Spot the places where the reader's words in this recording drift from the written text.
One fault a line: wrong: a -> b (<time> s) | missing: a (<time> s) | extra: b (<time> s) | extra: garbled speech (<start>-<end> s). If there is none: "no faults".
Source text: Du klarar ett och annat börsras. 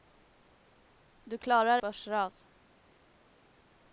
missing: ett och annat (1.8 s)